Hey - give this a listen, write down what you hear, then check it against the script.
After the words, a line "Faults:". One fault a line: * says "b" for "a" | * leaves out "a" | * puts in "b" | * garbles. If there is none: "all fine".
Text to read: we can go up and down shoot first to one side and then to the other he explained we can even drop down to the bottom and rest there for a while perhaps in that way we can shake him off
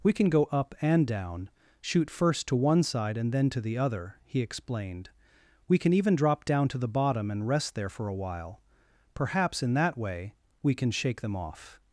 we can go up and down shoot first to one side and then to the other he explained we can even drop down to the bottom and rest there for a while perhaps in that way we can shake them off
Faults:
* says "them" for "him"